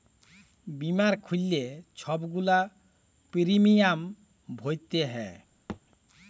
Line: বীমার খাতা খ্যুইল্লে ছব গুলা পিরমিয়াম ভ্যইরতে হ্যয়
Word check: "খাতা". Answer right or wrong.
wrong